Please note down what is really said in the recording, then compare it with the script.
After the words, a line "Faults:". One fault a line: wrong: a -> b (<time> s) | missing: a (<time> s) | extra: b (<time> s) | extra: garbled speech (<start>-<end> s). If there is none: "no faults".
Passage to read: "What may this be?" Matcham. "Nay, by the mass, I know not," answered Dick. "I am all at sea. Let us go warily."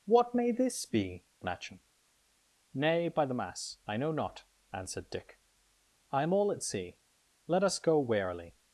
"What may this be?" Matcham. "Nay, by the mass, I know not," answered Dick. "I am all at sea. Let us go warily."
Faults:
no faults